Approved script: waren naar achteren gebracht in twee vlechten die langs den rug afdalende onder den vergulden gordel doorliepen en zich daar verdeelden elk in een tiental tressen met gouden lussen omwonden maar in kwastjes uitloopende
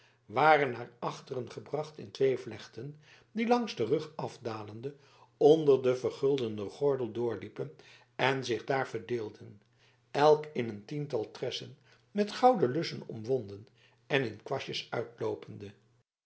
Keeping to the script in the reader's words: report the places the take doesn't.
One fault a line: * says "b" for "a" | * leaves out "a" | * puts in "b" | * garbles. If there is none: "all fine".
* says "en" for "maar"